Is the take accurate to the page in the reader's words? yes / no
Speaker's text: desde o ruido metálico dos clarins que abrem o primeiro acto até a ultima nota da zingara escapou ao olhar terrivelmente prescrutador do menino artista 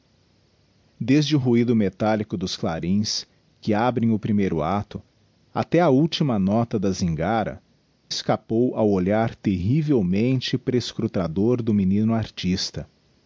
yes